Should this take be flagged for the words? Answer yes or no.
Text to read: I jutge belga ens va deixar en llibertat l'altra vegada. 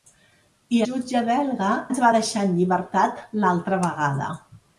no